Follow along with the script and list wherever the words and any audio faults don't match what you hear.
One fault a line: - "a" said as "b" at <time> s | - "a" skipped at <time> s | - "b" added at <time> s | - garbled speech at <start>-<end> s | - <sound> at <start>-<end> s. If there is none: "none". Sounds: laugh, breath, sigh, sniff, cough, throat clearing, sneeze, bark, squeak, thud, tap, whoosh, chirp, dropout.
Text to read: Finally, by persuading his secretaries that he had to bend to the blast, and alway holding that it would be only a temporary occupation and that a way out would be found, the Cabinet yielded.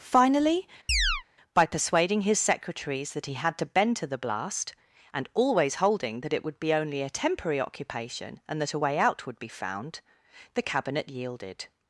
- chirp at 0.9-1.2 s
- "alway" said as "always" at 5.3 s